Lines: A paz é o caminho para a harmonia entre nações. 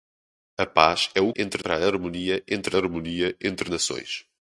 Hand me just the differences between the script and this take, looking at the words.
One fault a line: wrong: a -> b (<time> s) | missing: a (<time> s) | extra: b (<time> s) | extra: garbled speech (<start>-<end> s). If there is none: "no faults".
wrong: caminho -> entre (1.3 s)
extra: harmonia entre (2.8 s)